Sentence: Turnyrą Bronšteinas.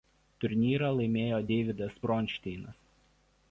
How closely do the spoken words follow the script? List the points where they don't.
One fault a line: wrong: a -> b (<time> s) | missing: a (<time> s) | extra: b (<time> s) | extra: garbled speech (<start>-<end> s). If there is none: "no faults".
extra: laimėjo Deividas (1.0 s)